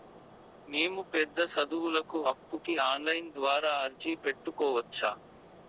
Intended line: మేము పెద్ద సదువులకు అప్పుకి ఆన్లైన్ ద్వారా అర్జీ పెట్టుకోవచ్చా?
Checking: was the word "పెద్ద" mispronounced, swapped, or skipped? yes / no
no